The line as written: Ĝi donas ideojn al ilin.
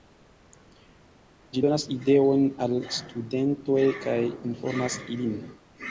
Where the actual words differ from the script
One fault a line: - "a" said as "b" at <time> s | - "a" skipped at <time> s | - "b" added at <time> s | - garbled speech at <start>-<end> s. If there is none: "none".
- "studentoj kaj informas" added at 3.0 s